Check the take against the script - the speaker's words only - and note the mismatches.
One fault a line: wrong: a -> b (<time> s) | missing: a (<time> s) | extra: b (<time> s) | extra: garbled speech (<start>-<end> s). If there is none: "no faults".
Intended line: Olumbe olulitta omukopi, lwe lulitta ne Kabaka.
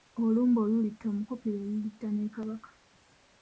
no faults